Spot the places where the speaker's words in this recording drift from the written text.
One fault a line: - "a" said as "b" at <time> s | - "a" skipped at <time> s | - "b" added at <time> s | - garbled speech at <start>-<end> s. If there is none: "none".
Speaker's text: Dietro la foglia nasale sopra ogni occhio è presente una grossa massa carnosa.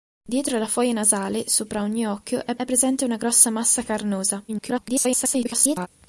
- "è" added at 2.5 s
- garbled speech at 4.5-5.9 s